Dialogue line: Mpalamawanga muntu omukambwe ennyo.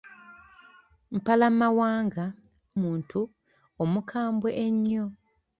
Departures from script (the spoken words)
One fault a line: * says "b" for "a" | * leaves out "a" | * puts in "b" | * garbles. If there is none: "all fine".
all fine